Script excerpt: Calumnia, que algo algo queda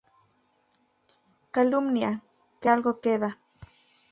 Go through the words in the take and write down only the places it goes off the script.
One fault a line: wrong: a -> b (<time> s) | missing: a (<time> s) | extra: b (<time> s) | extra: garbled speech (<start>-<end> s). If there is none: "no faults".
missing: algo (3.0 s)